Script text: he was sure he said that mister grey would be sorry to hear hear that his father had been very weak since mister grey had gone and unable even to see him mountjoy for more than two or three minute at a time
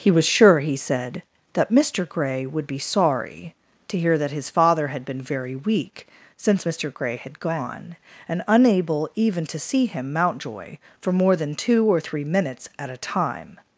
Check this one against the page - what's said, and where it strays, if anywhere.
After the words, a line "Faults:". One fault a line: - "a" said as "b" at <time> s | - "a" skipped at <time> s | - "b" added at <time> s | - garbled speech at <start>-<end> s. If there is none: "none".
he was sure he said that mister grey would be sorry to hear that his father had been very weak since mister grey had gone and unable even to see him mountjoy for more than two or three minutes at a time
Faults:
- "hear" skipped at 4.2 s
- "minute" said as "minutes" at 12.2 s